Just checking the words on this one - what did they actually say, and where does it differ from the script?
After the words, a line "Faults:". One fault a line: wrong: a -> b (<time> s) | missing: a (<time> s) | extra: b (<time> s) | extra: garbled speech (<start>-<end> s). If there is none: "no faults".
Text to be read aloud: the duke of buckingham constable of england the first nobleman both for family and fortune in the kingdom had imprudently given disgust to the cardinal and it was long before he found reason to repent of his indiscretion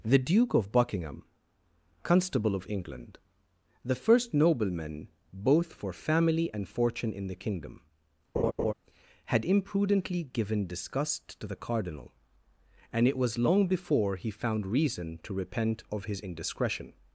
the duke of buckingham constable of england the first nobleman both for family and fortune in the kingdom had imprudently given disgust to the cardinal and it was long before he found reason to repent of his indiscretion
Faults:
no faults